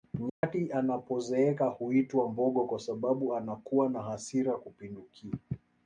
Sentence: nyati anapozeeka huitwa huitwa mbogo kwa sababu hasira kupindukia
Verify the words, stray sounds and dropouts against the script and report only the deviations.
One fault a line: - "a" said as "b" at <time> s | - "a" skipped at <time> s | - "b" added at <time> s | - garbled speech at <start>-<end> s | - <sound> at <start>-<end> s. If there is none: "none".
- dropout at 0.3-0.4 s
- "huitwa" skipped at 2.3 s
- "anakuwa na" added at 3.4 s